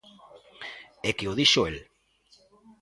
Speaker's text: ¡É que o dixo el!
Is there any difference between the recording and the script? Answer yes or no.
no